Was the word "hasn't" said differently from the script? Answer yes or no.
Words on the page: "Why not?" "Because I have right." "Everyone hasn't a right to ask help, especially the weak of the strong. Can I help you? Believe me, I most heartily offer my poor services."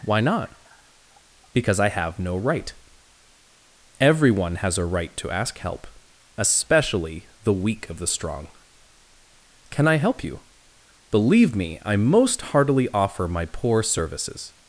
yes